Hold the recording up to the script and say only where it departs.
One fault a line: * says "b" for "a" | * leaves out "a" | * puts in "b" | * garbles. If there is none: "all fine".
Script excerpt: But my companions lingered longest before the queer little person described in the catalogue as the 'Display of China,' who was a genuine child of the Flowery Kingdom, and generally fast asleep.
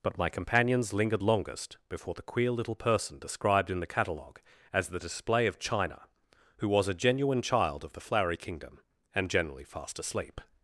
all fine